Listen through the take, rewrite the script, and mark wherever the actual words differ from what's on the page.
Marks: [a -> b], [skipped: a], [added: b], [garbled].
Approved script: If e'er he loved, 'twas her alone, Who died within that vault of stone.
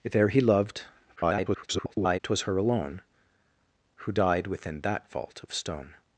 If e'er he loved, [garbled] 'twas her alone, Who died within that vault of stone.